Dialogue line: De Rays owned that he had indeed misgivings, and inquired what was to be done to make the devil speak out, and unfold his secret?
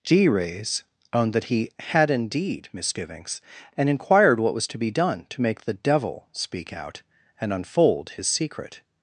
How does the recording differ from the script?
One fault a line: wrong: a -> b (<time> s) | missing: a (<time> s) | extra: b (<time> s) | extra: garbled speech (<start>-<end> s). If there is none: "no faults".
wrong: De -> G (0.0 s)